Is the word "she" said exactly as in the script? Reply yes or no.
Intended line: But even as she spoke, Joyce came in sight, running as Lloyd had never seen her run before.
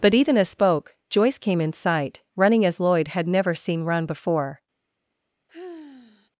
no